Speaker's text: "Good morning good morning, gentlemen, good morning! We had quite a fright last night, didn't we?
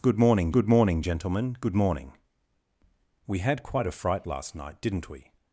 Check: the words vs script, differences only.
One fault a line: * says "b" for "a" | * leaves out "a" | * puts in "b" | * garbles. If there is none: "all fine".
all fine